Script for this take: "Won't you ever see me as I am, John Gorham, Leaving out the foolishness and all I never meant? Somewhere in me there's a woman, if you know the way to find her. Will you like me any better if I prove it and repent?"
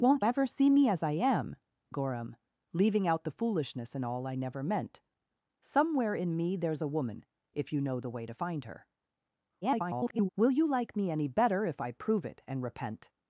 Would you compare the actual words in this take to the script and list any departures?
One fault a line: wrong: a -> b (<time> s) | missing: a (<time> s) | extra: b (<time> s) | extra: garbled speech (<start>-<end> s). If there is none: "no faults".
missing: you (0.2 s)
missing: John (1.6 s)
extra: garbled speech (9.6-10.3 s)